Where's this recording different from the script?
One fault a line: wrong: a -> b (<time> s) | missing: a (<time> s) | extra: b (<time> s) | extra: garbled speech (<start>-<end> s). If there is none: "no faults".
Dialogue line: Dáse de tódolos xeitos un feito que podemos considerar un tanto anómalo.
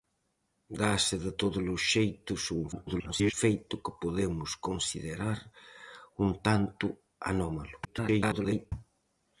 extra: garbled speech (2.7-3.3 s)
extra: garbled speech (7.8-8.7 s)